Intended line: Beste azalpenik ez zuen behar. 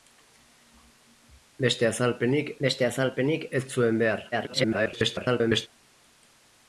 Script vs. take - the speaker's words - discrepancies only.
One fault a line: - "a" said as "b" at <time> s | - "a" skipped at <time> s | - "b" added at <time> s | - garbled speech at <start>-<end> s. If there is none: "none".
- "beste azalpenik" added at 2.7 s
- garbled speech at 4.3-5.7 s